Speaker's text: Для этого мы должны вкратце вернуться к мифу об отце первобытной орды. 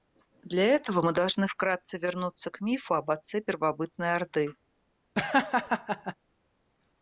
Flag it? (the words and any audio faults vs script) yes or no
yes